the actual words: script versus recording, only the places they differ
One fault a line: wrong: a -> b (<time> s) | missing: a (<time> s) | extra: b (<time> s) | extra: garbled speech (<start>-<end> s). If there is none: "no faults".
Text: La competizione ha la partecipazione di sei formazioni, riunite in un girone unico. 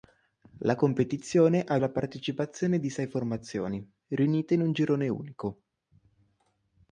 no faults